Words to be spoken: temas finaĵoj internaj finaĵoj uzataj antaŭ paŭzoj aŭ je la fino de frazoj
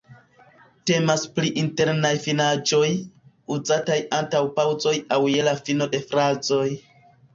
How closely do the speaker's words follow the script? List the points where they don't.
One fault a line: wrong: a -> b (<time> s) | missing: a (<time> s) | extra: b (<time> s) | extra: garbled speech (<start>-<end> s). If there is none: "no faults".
wrong: finaĵoj -> pri (1.4 s)